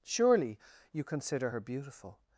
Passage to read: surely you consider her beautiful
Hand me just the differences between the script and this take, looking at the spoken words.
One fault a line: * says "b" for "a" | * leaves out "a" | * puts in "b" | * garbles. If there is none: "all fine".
all fine